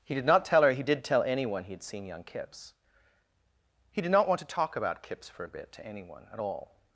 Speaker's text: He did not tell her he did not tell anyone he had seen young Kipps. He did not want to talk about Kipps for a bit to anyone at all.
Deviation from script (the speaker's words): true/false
true